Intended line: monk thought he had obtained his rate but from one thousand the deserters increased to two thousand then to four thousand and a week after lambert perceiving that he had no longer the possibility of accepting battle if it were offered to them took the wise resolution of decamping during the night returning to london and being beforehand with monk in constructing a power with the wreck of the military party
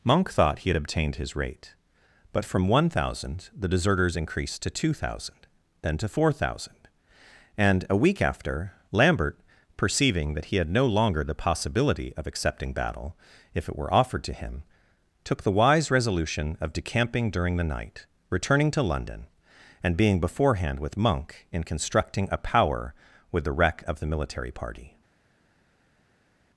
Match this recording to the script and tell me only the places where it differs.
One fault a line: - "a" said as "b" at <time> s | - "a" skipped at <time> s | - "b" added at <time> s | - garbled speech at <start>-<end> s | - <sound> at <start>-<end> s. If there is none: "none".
- "them" said as "him" at 14.3 s